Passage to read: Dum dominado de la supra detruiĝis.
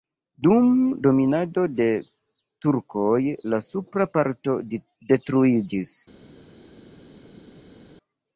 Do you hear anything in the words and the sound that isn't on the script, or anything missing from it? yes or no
yes